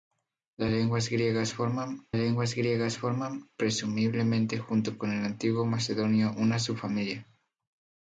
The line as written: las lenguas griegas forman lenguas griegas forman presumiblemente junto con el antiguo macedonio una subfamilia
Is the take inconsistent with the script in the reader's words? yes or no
no